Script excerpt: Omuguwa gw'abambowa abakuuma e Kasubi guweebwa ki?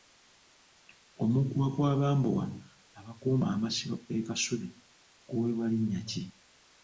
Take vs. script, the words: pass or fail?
fail